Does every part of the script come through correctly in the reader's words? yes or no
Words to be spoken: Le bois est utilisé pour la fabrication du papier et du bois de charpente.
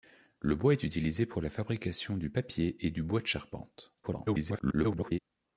no